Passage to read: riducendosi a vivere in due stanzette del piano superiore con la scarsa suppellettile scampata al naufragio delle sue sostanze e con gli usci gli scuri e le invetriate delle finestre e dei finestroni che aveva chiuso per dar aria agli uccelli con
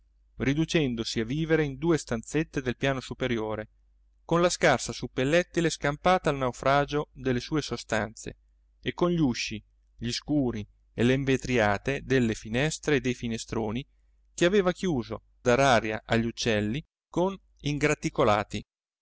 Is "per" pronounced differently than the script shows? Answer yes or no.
yes